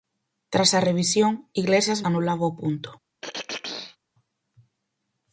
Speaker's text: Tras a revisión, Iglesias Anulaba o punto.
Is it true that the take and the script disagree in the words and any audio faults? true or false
true